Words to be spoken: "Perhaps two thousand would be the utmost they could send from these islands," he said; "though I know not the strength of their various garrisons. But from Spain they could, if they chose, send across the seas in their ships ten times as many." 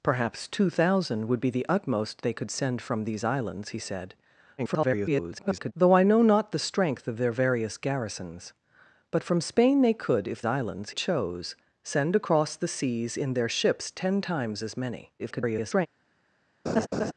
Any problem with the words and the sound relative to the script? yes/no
yes